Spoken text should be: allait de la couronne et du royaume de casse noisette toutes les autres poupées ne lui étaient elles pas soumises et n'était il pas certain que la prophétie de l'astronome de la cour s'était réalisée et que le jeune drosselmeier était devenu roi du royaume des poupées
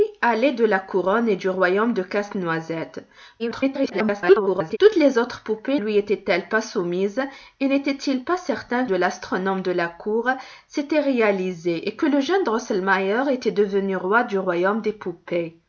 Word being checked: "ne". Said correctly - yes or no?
no